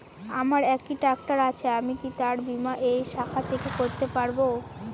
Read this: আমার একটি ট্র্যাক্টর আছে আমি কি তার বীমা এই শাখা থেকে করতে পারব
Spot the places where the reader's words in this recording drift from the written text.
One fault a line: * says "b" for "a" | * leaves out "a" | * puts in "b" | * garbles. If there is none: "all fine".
all fine